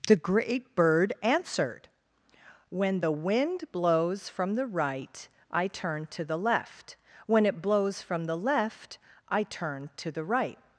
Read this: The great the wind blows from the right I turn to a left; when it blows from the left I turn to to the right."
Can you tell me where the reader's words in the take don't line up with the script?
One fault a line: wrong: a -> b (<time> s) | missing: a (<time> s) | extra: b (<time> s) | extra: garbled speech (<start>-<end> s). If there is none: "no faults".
extra: bird answered When (0.7 s)
wrong: a -> the (6.2 s)
missing: to (10.1 s)